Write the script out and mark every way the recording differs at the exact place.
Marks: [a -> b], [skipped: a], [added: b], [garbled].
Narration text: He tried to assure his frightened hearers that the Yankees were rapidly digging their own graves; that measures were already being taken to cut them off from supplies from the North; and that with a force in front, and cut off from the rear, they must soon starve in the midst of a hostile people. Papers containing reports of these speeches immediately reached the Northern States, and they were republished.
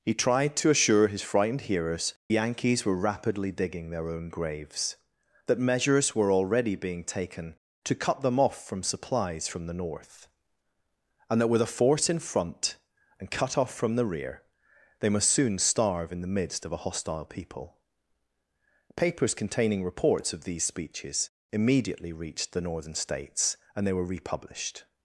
He tried to assure his frightened hearers [skipped: that the] Yankees were rapidly digging their own graves; that measures were already being taken to cut them off from supplies from the North; and that with a force in front, and cut off from the rear, they must soon starve in the midst of a hostile people. Papers containing reports of these speeches immediately reached the Northern States, and they were republished.